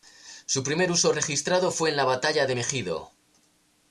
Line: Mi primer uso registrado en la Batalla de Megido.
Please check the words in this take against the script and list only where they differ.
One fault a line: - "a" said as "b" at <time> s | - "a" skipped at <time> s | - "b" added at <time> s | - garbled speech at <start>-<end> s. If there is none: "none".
- "Mi" said as "Su" at 0.5 s
- "fue" added at 1.7 s